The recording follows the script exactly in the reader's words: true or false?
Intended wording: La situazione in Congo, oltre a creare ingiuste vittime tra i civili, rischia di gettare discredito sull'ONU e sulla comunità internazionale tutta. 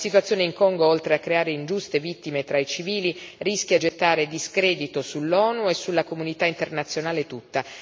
false